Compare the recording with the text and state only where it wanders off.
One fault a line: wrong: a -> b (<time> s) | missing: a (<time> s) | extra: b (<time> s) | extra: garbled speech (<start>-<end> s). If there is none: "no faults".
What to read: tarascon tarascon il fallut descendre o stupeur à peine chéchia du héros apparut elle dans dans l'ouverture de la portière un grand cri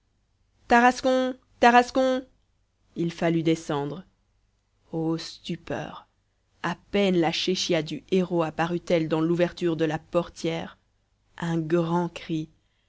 extra: la (7.2 s)
missing: dans (9.2 s)